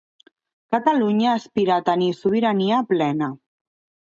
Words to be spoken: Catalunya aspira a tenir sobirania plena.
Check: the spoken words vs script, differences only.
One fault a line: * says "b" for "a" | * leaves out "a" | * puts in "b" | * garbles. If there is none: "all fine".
all fine